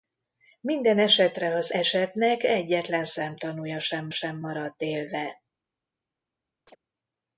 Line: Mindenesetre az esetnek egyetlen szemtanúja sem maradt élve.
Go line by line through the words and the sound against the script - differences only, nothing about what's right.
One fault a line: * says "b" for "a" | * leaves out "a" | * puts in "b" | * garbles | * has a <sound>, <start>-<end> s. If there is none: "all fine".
* puts in "sem"
* has a chirp, 6.7-6.8 s